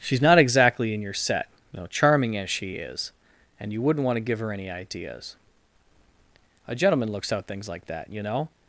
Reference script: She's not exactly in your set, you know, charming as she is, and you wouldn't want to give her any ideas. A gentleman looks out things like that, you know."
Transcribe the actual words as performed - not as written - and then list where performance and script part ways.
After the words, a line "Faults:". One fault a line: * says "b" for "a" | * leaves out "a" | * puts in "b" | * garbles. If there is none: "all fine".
She's not exactly in your set, you know, charming as she is, and you wouldn't want to give her any ideas. A gentleman looks out things like that, you know."
Faults:
all fine